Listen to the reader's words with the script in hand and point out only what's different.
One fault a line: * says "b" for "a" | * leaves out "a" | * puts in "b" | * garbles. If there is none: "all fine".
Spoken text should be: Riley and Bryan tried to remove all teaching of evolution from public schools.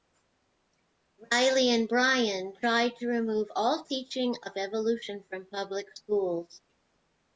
all fine